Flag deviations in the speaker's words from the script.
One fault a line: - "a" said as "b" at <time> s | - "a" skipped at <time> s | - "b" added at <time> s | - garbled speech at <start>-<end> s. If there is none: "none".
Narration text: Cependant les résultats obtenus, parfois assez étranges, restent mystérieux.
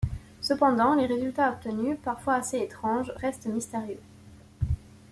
none